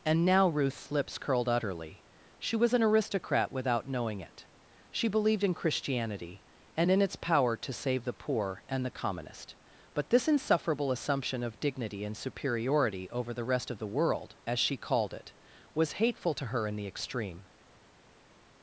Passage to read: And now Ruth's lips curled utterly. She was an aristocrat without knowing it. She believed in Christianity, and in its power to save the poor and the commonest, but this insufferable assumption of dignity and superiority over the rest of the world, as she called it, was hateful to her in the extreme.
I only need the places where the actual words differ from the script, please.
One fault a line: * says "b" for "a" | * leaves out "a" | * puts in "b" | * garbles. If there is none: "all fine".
all fine